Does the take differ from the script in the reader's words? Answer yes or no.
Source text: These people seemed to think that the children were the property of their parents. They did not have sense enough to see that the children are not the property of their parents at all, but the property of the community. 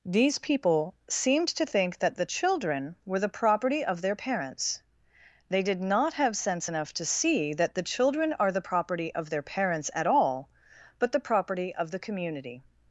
yes